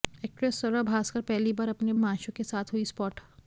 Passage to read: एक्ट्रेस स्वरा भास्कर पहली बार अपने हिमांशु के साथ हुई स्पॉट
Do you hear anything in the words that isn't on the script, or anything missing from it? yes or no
no